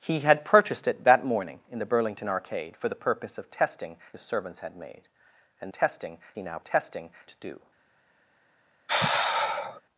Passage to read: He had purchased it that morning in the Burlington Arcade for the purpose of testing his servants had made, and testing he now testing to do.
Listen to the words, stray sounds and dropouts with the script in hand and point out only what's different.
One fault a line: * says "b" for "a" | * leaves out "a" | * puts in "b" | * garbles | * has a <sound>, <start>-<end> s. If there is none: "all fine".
* has a sigh, 8.9-9.8 s